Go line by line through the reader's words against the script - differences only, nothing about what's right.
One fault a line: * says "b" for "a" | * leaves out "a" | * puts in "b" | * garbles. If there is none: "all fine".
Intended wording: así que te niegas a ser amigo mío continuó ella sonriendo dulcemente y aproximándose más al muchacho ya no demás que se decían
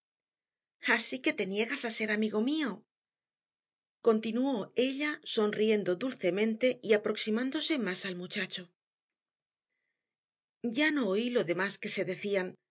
* puts in "oí lo"